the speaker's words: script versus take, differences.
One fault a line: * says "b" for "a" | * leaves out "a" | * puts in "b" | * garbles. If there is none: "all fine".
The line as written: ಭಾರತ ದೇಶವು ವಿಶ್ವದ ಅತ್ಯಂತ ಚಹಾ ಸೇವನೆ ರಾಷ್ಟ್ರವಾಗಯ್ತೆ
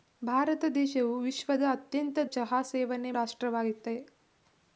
all fine